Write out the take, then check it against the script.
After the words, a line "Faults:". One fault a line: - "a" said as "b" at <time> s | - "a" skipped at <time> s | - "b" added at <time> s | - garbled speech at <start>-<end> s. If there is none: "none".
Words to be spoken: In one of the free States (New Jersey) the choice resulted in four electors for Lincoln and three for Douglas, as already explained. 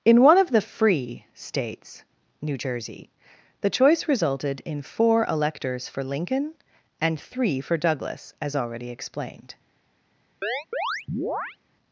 In one of the free States (New Jersey) the choice resulted in four electors for Lincoln and three for Douglas, as already explained.
Faults:
none